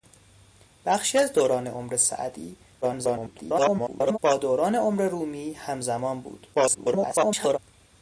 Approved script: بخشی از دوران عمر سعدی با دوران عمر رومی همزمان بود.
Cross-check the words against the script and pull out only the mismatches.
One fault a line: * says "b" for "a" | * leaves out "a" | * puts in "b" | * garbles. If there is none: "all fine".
* garbles
* garbles